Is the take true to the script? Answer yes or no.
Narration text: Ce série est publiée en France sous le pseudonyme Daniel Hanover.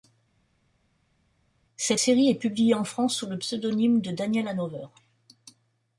no